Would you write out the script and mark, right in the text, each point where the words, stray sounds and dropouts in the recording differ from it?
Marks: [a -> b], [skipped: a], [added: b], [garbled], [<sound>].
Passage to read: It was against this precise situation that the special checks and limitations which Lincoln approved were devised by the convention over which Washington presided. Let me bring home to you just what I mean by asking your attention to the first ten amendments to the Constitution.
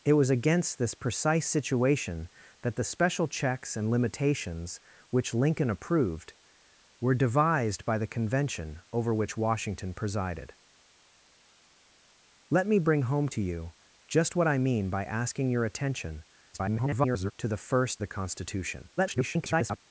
It was against this precise situation that the special checks and limitations which Lincoln approved were devised by the convention over which Washington presided. Let me bring home to you just what I mean by asking your attention [garbled] to the first [skipped: ten amendments to] the Constitution. [garbled]